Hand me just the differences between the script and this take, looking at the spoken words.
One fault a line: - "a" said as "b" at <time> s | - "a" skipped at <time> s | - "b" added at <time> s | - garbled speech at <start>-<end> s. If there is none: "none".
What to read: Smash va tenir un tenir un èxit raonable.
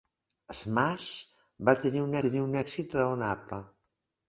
none